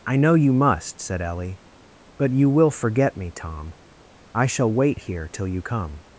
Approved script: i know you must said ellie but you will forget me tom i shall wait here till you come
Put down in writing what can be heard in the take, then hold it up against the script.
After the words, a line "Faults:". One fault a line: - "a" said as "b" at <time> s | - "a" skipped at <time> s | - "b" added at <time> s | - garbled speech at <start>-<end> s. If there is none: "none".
i know you must said ellie but you will forget me tom i shall wait here till you come
Faults:
none